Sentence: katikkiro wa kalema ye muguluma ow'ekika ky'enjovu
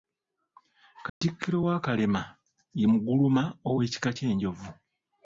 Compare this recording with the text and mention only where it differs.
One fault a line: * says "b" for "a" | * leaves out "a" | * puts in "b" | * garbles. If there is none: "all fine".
all fine